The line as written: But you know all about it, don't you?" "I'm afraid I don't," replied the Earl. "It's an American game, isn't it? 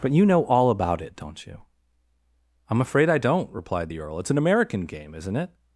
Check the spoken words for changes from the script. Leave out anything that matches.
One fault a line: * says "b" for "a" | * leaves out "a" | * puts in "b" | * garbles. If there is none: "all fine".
all fine